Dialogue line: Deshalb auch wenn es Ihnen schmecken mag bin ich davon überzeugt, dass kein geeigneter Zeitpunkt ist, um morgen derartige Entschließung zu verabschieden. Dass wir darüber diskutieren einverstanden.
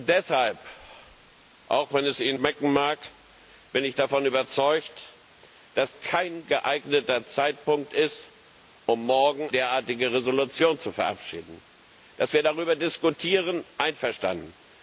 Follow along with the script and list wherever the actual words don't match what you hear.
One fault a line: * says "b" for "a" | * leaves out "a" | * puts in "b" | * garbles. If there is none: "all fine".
all fine